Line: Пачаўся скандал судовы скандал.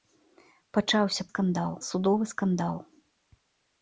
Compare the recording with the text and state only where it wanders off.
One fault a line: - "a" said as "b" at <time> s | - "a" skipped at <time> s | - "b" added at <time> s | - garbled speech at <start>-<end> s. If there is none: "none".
none